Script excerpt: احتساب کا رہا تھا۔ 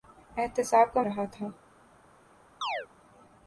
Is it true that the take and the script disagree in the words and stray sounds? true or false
true